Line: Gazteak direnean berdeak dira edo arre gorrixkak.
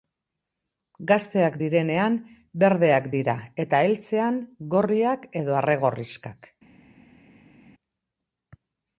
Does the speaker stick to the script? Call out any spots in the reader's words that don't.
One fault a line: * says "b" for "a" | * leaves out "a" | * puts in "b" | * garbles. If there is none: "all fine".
* puts in "eta heltzean gorriak"